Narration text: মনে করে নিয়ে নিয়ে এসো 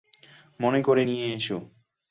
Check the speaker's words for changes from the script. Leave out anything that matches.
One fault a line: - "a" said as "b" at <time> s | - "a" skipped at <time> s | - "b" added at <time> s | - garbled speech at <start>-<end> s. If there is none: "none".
- "নিয়ে" skipped at 1.3 s